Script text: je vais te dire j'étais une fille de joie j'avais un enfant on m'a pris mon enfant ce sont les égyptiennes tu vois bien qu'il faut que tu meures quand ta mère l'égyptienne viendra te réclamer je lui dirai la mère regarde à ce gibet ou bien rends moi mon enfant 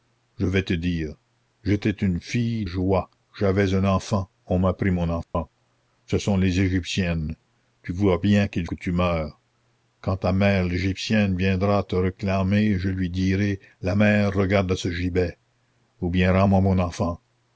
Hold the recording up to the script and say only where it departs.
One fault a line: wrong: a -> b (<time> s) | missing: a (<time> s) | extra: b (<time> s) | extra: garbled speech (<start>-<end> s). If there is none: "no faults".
missing: de (2.6 s)
missing: faut (8.7 s)